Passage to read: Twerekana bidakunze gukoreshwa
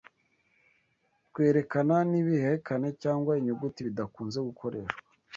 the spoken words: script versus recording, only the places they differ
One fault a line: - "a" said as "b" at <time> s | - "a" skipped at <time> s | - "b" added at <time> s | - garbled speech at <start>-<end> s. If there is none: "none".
- "n'ibihekane cyangwa inyuguti" added at 2.1 s